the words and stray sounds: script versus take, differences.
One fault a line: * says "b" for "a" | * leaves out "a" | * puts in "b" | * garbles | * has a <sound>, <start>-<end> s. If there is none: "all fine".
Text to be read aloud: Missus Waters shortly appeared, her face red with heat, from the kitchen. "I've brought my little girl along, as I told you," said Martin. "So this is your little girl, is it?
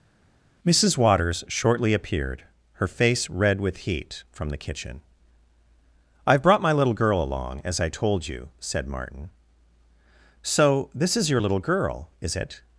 all fine